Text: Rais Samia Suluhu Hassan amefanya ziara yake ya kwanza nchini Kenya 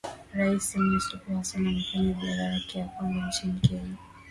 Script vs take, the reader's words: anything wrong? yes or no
no